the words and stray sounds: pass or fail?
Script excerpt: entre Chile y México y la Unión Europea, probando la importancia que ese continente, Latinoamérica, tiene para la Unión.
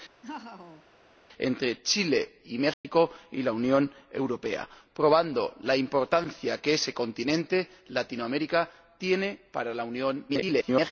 fail